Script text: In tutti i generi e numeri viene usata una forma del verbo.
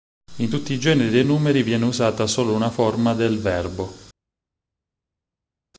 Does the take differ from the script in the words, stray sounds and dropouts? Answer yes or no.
yes